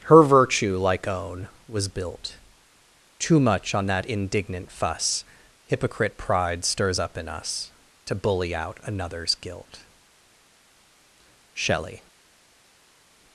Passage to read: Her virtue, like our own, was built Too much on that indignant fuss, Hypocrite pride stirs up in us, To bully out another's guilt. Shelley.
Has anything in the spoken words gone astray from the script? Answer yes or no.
yes